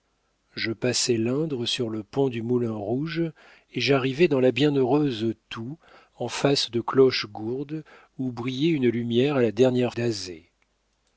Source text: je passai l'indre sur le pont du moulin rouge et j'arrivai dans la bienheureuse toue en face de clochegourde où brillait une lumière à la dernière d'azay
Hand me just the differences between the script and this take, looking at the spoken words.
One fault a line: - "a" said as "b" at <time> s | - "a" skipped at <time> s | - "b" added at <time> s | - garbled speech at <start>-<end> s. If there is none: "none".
none